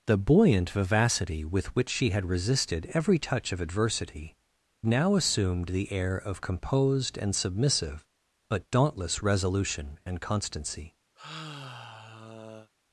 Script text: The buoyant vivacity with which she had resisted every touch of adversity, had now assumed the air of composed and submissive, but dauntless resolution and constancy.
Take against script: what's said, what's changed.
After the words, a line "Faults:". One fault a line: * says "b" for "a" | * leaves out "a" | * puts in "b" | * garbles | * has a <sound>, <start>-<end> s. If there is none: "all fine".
The buoyant vivacity with which she had resisted every touch of adversity, now assumed the air of composed and submissive, but dauntless resolution and constancy.
Faults:
* leaves out "had"
* has a sigh, 11.2-12.7 s